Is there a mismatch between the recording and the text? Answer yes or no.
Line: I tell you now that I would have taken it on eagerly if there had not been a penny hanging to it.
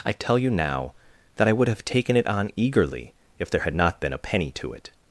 yes